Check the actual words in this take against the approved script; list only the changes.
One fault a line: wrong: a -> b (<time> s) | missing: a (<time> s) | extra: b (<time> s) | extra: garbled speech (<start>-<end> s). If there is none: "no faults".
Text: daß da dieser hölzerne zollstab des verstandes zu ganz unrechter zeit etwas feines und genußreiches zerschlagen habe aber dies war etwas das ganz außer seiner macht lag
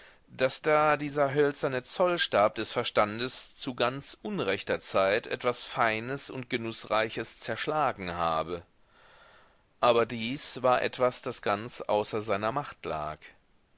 no faults